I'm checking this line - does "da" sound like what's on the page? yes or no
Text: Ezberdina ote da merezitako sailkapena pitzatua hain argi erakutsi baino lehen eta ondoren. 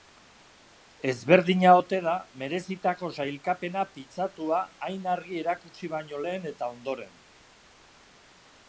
yes